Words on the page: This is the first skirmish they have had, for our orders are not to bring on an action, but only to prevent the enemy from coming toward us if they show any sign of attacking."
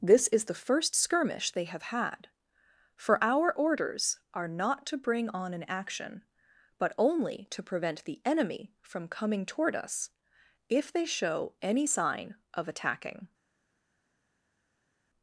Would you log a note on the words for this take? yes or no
no